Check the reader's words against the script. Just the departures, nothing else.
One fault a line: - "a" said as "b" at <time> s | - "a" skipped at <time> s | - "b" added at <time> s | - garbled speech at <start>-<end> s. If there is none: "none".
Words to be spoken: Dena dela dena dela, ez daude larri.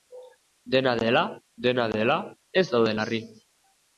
none